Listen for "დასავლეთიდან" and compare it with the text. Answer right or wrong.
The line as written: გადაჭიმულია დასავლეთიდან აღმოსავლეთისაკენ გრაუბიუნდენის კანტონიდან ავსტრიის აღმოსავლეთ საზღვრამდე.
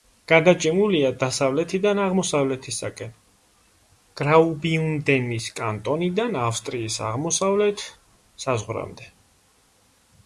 right